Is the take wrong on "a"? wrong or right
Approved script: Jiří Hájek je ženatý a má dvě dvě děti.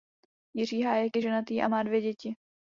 right